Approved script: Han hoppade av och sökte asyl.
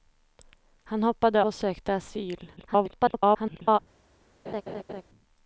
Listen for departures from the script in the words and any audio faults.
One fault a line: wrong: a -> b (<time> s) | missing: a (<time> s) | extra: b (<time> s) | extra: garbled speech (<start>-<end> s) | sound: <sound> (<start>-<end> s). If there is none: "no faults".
missing: av (1.4 s)
extra: garbled speech (2.6-3.8 s)
sound: laugh (4.5-5.0 s)